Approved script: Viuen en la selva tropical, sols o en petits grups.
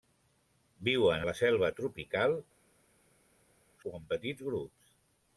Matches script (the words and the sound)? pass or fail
fail